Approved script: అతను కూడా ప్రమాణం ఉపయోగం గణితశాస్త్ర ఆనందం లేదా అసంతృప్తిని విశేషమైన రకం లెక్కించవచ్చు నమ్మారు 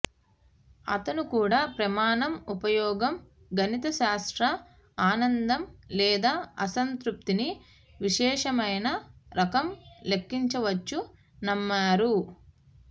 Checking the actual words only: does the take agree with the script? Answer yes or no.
yes